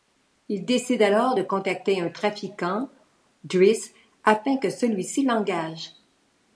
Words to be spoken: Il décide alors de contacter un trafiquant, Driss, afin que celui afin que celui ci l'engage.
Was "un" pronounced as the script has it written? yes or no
yes